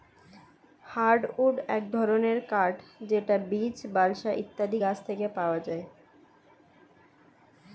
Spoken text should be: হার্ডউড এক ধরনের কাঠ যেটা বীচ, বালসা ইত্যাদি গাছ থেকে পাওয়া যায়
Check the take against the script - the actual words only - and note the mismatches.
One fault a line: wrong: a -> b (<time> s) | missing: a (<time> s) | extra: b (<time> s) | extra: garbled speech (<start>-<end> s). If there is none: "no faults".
no faults